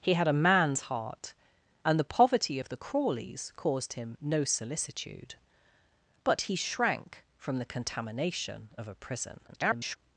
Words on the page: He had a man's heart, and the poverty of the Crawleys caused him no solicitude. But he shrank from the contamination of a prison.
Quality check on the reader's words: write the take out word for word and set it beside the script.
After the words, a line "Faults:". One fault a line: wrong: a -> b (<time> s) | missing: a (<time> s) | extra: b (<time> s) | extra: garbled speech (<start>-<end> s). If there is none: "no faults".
He had a man's heart, and the poverty of the Crawleys caused him no solicitude. But he shrank from the contamination of a prison. [garbled]
Faults:
extra: garbled speech (9.5-10.0 s)